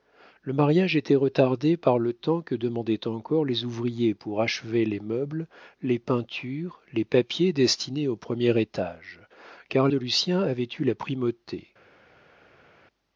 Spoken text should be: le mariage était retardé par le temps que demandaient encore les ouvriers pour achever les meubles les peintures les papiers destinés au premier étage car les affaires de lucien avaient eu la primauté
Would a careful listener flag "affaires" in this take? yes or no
yes